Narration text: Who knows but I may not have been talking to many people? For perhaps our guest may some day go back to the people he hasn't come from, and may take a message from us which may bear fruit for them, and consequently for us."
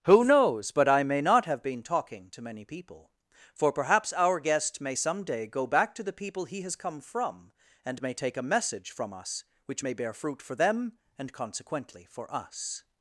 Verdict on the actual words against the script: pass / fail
fail